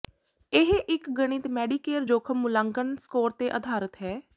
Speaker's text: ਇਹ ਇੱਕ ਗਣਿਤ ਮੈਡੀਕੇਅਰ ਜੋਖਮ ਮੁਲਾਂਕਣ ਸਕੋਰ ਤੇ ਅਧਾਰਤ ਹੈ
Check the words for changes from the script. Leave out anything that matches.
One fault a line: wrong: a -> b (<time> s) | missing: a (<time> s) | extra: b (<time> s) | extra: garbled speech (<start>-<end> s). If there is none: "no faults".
no faults